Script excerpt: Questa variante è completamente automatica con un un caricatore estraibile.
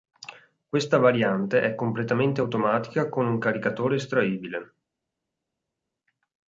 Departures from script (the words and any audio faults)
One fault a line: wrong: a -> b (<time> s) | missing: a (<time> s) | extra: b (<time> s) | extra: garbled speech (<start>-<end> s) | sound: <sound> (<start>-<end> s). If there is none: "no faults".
missing: un (3.4 s)